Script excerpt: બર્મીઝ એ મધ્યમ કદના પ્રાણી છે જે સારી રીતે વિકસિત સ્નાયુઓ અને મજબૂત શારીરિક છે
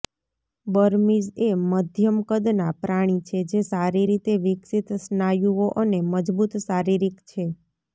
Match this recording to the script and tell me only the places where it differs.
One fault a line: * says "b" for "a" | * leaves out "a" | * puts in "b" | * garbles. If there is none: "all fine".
all fine